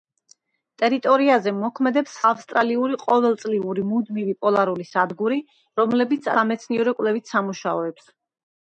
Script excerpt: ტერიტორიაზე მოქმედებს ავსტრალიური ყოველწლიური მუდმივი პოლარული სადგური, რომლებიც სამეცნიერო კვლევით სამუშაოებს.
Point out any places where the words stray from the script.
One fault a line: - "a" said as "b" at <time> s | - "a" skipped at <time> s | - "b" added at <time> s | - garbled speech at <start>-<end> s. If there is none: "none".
none